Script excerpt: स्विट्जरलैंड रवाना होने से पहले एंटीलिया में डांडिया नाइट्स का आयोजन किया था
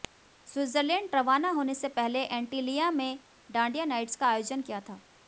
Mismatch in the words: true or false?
false